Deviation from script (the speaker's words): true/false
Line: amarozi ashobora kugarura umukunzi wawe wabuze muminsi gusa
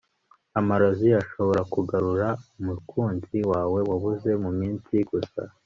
false